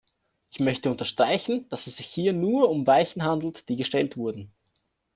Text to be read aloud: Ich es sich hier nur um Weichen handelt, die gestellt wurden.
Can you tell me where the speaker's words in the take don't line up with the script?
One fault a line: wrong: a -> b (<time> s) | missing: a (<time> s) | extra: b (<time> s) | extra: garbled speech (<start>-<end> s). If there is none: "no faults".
extra: möchte unterstreichen dass (0.6 s)